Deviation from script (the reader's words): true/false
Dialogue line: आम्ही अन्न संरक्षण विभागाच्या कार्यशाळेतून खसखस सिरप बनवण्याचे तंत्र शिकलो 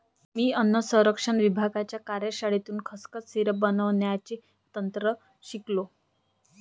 true